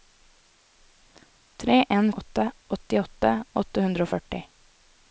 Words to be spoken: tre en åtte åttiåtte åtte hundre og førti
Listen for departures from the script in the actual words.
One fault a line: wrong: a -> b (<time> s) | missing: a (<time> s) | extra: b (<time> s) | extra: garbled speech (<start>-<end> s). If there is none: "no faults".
no faults